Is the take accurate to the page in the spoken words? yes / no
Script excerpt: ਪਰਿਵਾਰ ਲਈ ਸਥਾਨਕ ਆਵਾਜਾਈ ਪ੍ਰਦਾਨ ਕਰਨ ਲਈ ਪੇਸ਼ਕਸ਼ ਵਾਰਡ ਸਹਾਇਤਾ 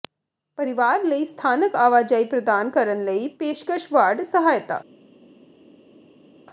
yes